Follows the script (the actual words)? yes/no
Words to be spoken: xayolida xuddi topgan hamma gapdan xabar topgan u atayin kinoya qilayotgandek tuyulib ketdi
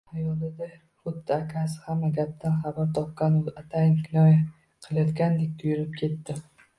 no